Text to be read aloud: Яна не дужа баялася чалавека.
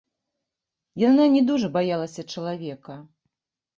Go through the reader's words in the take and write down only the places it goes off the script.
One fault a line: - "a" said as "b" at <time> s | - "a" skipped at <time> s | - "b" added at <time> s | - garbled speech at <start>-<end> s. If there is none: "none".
none